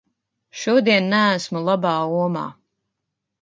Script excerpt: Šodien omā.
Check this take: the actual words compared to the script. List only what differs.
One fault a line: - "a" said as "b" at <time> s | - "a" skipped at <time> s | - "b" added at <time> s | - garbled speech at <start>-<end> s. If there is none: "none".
- "neesmu labā" added at 1.1 s